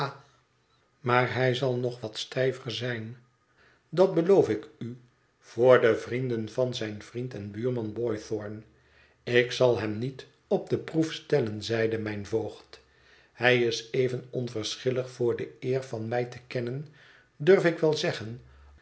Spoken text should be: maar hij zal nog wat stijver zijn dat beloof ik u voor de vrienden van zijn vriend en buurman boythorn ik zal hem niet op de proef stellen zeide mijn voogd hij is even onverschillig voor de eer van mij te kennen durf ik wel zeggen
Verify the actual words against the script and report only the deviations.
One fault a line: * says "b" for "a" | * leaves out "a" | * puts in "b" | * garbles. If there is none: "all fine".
all fine